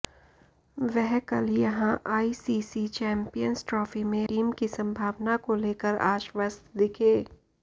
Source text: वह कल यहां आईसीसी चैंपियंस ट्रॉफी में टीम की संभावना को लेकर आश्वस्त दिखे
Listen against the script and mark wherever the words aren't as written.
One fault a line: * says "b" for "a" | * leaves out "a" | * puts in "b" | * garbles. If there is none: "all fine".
all fine